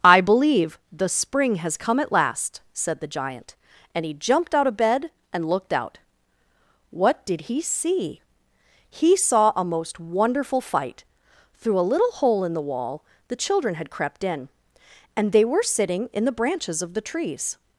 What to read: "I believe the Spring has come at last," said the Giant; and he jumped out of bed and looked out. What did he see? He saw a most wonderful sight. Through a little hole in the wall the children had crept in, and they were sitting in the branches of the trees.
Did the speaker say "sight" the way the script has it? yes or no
no